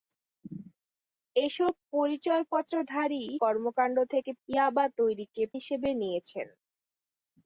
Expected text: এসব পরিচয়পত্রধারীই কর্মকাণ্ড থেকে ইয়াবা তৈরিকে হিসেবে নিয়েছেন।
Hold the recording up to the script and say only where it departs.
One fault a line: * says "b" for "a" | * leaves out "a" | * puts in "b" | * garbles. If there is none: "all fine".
all fine